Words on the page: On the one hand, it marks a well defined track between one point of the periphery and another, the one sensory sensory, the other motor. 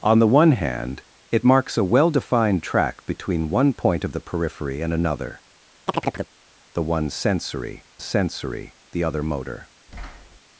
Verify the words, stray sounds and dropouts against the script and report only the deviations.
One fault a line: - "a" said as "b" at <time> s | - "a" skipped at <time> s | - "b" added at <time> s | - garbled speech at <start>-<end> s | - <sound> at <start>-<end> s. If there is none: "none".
- chirp at 5.9-6.3 s
- thud at 9.9-10.4 s